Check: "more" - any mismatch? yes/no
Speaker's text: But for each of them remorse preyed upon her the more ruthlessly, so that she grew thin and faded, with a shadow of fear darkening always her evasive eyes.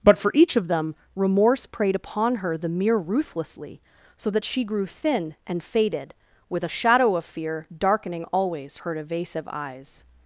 yes